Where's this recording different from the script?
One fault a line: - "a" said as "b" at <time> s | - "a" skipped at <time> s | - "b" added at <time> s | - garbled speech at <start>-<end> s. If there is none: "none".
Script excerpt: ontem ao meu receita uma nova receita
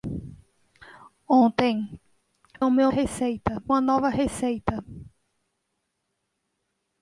none